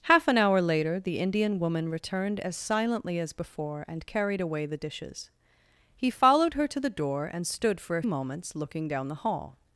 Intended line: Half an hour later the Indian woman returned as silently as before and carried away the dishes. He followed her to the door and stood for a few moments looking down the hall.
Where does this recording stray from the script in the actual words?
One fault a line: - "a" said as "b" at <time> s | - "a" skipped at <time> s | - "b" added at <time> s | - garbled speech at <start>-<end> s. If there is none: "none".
- "few" skipped at 8.0 s